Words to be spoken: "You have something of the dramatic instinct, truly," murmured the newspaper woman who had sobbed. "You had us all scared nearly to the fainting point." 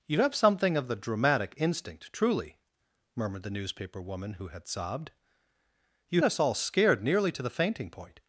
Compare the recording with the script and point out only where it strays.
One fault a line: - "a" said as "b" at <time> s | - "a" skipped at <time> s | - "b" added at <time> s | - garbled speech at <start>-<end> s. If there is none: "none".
- "had" skipped at 6.2 s